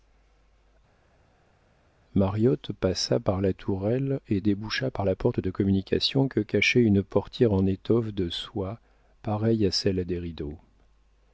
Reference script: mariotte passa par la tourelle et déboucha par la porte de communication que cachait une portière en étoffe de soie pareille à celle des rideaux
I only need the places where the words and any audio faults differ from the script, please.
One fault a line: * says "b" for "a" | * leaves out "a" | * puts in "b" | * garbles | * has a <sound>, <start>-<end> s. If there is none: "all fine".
all fine